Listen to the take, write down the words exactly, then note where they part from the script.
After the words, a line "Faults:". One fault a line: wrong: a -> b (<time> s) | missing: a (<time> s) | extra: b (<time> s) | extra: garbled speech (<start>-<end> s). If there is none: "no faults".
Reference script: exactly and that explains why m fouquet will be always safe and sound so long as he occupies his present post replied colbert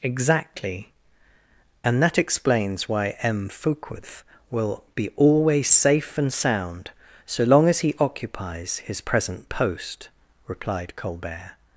exactly and that explains why m fouquet will be always safe and sound so long as he occupies his present post replied colbert
Faults:
no faults